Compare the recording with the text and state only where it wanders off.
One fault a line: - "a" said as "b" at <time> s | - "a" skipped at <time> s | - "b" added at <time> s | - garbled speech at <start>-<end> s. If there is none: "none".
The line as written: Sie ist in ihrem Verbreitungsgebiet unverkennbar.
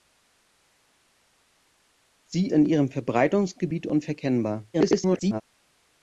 - "ist" skipped at 2.5 s
- garbled speech at 4.7-5.4 s